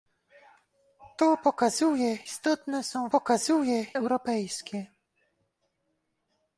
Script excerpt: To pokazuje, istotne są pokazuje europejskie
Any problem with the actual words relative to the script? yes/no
no